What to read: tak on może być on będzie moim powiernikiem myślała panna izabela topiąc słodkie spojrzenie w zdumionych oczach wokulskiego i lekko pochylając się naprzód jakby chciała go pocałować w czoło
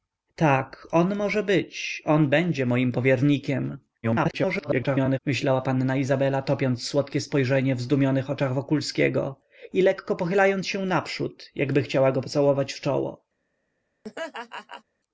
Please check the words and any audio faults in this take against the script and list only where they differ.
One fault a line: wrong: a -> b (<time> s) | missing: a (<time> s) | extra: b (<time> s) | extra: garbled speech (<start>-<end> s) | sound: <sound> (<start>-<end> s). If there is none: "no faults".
extra: garbled speech (4.0-5.2 s)
sound: laugh (14.0-14.8 s)